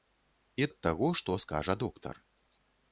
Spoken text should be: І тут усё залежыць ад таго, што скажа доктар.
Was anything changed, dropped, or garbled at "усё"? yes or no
yes